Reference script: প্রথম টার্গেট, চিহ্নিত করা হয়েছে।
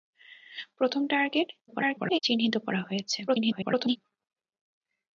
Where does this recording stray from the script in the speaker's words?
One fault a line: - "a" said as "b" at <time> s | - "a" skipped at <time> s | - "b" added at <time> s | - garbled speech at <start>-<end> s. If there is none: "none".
- garbled speech at 1.7-2.2 s
- garbled speech at 3.3-4.0 s